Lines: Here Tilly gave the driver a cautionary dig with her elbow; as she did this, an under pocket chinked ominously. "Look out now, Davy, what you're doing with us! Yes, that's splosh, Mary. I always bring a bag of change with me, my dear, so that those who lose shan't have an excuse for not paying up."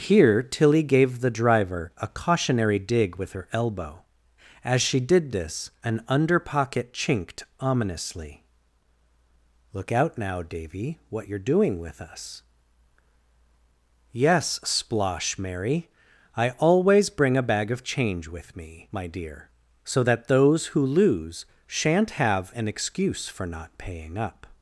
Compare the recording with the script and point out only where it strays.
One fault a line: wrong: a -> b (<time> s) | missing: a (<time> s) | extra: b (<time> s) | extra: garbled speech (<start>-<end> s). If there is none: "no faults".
missing: that's (14.6 s)